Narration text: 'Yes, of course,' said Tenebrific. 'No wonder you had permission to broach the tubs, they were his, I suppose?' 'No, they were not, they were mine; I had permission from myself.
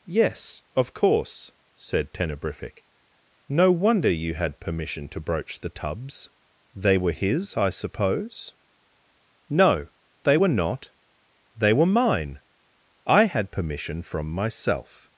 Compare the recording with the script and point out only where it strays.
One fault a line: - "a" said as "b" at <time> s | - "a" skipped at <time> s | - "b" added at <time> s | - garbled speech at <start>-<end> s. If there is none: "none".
none